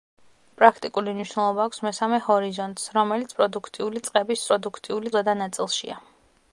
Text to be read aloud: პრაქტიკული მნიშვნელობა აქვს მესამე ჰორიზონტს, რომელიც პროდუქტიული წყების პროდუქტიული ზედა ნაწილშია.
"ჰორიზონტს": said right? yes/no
yes